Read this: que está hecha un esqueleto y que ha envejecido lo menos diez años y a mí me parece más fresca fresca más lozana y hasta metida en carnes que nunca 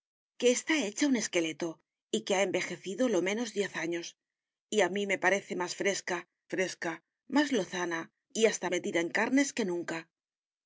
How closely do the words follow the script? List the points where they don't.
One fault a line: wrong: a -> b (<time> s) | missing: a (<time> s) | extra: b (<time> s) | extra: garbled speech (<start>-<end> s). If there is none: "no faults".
no faults